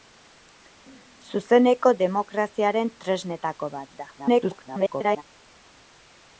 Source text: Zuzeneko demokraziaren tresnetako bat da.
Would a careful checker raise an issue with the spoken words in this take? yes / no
yes